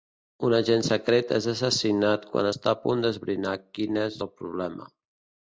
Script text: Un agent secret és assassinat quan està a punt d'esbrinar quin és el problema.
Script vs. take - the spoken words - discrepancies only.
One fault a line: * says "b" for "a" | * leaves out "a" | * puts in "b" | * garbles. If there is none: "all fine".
all fine